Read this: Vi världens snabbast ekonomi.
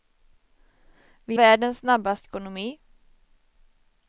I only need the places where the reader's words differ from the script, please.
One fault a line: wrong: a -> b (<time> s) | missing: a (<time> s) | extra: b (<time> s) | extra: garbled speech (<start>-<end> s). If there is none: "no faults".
no faults